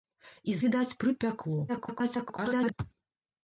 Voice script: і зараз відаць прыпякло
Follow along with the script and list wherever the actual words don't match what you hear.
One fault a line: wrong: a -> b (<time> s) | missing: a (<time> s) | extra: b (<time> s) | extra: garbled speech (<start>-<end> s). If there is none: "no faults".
missing: зараз (0.6 s)
extra: garbled speech (1.7-2.7 s)